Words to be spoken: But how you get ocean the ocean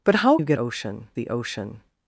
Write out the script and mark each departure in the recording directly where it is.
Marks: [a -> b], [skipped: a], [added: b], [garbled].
But how you get ocean the ocean